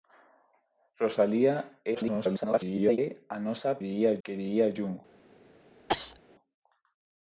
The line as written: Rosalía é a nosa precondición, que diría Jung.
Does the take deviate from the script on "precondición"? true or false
true